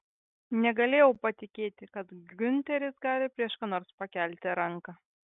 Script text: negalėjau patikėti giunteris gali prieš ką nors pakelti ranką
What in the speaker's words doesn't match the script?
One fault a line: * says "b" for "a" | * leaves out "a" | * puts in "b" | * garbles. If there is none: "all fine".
* puts in "kad"